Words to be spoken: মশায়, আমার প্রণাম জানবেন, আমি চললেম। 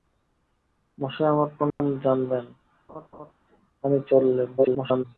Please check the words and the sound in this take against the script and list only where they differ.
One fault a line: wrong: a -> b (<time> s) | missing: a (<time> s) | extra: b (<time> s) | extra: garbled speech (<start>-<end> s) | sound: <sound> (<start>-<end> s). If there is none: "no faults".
sound: dropout (1.7-1.8 s)
sound: laugh (2.9-3.3 s)
extra: garbled speech (4.6-5.0 s)